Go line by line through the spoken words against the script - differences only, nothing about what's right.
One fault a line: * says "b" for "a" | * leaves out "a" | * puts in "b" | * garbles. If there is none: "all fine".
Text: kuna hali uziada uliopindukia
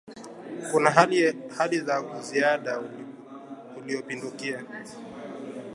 * puts in "za"